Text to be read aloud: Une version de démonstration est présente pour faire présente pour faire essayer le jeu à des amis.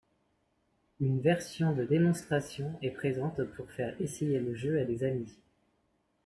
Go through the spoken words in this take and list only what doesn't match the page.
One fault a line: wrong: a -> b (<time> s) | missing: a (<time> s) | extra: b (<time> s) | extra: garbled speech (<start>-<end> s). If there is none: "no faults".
missing: présente pour faire (4.0 s)